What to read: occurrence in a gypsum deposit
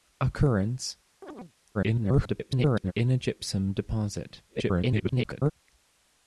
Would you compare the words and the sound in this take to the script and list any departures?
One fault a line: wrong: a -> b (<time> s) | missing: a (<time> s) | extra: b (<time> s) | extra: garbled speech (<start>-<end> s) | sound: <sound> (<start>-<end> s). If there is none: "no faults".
sound: chirp (1.2-1.5 s)
extra: garbled speech (1.7-2.9 s)
extra: garbled speech (4.5-5.5 s)